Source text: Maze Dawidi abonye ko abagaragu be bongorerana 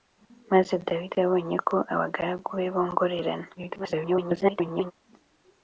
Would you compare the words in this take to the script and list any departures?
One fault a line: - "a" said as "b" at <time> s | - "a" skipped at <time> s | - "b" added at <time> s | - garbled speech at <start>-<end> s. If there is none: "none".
- garbled speech at 3.5-4.9 s